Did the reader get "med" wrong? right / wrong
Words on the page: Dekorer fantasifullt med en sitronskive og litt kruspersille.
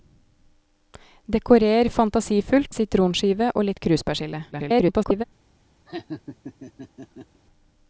wrong